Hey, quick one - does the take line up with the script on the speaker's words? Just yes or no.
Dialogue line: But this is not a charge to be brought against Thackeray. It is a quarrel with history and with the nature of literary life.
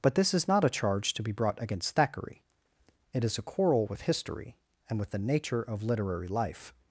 yes